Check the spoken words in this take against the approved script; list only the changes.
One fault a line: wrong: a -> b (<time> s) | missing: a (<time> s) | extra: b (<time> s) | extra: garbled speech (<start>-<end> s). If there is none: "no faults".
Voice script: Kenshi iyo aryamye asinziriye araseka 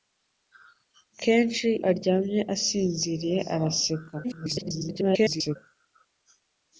missing: iyo (1.7 s)
extra: garbled speech (4.2-5.6 s)